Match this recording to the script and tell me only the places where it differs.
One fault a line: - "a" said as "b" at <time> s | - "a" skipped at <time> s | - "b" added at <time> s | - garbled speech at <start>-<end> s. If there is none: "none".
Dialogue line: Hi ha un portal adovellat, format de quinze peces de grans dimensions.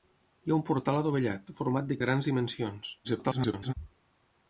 - "quinze peces" skipped at 2.0 s
- garbled speech at 3.0-3.7 s